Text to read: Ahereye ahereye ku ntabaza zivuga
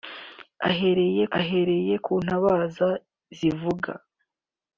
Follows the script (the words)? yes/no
yes